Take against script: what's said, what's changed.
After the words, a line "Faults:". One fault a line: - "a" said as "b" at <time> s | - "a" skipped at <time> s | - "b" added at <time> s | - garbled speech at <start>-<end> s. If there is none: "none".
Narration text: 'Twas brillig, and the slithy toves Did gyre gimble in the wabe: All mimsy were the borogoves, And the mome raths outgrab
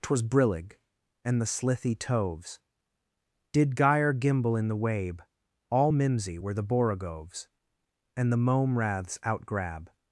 'Twas brillig, and the slithy toves Did gyre gimble in the wabe: All mimsy were the borogoves, And the mome raths outgrab
Faults:
none